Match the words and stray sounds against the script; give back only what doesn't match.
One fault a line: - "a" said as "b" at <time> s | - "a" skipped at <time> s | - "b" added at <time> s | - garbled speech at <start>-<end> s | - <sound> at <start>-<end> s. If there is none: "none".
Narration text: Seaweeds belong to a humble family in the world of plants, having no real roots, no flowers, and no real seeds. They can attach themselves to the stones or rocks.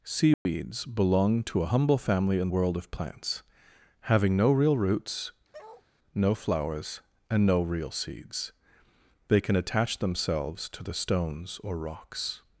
- dropout at 0.3-0.5 s
- "the" skipped at 2.5 s
- bark at 5.5-5.9 s